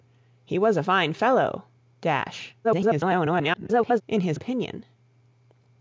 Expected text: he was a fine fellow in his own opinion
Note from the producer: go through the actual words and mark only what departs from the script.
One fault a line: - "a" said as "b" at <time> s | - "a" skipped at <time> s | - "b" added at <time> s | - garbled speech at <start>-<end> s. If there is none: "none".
- garbled speech at 2.6-4.0 s
- "own" skipped at 4.4 s